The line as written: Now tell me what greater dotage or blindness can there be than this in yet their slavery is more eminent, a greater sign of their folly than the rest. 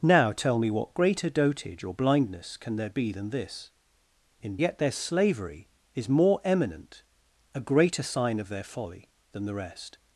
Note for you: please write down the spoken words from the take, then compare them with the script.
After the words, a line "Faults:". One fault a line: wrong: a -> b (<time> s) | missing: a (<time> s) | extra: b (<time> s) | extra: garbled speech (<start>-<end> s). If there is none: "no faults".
Now tell me what greater dotage or blindness can there be than this in yet their slavery is more eminent, a greater sign of their folly than the rest.
Faults:
no faults